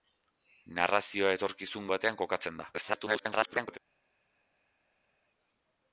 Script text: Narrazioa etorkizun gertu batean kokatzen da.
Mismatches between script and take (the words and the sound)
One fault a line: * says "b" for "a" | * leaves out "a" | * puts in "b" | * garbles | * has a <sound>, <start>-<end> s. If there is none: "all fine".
* leaves out "gertu"
* garbles